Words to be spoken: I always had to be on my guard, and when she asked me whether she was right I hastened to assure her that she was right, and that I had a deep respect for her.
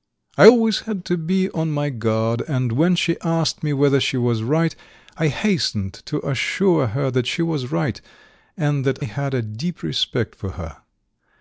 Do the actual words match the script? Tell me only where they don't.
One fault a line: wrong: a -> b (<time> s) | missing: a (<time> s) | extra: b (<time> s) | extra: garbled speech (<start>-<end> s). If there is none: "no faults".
missing: I (9.0 s)